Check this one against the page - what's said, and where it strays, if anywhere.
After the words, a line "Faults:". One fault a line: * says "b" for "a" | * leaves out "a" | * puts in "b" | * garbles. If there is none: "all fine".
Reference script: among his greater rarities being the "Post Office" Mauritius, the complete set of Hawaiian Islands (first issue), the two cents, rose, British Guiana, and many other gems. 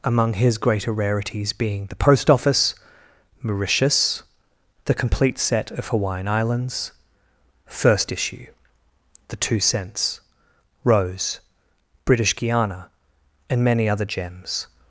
among his greater rarities being the "Post Office" Mauritius, the complete set of Hawaiian Islands (first issue), the two cents, rose, British Guiana, and many other gems.
Faults:
all fine